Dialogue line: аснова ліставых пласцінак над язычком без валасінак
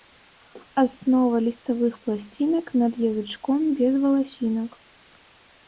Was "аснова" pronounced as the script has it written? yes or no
yes